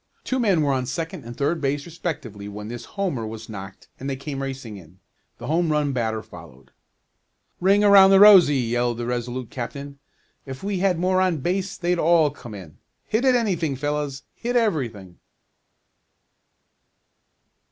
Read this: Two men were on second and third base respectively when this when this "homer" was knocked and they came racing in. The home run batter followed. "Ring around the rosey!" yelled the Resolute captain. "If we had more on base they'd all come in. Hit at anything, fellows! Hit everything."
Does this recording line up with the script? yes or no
no